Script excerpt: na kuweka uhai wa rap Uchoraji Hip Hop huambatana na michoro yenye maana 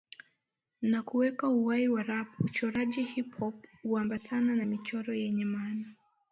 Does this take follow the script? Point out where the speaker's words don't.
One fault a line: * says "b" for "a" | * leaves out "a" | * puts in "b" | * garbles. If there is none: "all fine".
all fine